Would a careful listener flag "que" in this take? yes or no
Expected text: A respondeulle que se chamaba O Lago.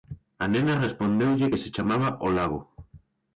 no